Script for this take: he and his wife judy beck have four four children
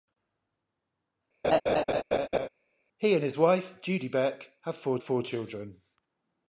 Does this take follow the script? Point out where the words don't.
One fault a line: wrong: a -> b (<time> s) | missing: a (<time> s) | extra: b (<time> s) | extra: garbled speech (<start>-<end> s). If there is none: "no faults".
no faults